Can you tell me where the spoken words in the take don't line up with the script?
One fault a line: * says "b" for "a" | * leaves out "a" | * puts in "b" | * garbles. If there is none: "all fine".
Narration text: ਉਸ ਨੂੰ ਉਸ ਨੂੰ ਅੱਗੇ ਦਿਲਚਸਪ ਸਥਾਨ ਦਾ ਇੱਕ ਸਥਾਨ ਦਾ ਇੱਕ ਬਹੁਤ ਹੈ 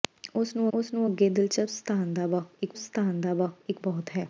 all fine